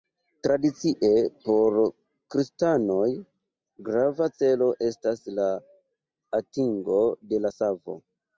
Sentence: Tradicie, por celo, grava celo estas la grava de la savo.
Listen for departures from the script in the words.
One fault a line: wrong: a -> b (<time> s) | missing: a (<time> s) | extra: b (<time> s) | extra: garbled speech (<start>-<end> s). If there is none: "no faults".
wrong: celo -> kristanoj (2.4 s)
wrong: grava -> atingo (6.4 s)